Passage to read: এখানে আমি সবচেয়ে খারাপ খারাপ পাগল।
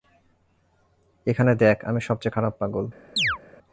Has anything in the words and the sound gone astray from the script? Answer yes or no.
yes